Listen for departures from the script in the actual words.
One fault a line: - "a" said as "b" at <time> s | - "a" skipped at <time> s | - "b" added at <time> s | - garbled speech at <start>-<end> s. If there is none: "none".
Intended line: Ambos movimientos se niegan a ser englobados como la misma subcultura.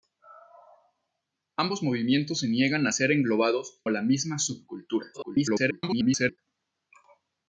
- "como" skipped at 3.8 s
- garbled speech at 5.1-6.4 s